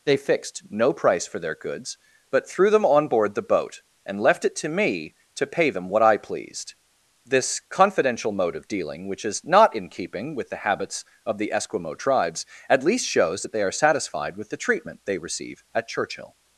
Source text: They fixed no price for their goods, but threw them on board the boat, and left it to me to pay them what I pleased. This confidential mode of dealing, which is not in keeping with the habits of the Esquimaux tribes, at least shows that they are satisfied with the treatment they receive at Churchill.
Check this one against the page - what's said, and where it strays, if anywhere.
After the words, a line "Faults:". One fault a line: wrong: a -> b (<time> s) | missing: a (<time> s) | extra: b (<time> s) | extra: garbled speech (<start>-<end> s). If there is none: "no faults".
They fixed no price for their goods, but threw them on board the boat, and left it to me to pay them what I pleased. This confidential mode of dealing, which is not in keeping with the habits of the Esquimaux tribes, at least shows that they are satisfied with the treatment they receive at Churchill.
Faults:
no faults